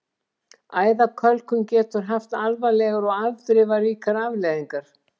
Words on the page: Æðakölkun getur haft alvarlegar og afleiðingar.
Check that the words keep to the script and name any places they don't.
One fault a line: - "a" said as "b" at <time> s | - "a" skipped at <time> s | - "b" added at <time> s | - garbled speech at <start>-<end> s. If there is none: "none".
- "afdrifaríkar" added at 3.3 s